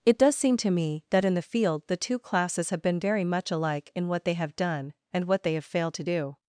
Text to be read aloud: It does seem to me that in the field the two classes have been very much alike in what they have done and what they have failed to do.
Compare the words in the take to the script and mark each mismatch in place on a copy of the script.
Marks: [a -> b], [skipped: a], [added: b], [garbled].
It does seem to me that in the field the two classes have been very much alike in what they have done and what they have failed to do.